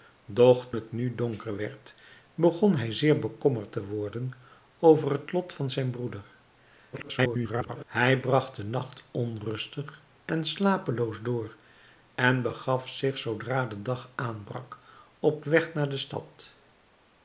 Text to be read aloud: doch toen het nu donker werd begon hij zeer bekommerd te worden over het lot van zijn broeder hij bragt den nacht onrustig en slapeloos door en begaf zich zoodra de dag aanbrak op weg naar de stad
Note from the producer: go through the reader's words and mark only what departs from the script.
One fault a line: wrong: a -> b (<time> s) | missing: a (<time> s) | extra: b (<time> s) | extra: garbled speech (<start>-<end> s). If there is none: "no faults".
missing: toen (0.7 s)
extra: garbled speech (6.9-7.8 s)